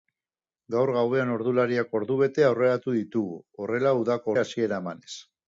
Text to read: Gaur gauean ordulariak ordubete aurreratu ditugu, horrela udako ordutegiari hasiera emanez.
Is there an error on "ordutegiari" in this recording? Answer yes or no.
yes